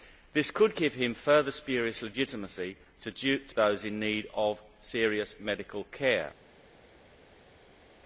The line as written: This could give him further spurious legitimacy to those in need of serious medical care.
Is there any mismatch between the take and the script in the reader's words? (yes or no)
no